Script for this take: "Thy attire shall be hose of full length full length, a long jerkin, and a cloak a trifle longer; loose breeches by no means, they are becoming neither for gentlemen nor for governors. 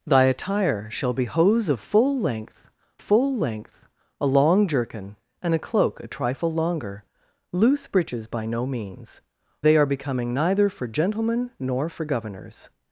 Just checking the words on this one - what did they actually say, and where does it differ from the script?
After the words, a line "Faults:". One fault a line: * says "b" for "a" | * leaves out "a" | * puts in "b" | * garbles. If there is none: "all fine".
"Thy attire shall be hose of full length full length, a long jerkin, and a cloak a trifle longer; loose breeches by no means, they are becoming neither for gentlemen nor for governors.
Faults:
all fine